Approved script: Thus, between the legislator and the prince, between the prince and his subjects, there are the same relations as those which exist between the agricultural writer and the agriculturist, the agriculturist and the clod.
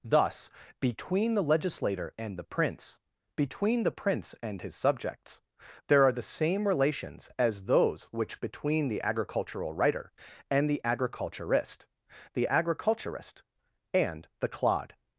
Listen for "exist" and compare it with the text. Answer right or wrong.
wrong